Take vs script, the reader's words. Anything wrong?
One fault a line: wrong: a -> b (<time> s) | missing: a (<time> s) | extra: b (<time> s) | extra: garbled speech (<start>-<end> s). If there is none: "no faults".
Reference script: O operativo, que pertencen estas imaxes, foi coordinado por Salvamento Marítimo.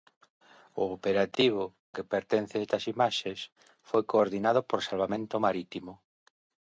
no faults